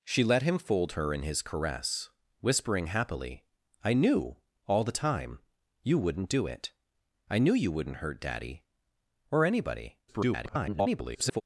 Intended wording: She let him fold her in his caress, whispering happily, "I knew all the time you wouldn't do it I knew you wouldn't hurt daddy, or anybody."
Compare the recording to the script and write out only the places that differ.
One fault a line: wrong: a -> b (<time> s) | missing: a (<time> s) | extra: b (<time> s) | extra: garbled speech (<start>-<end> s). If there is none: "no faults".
extra: garbled speech (10.1-11.4 s)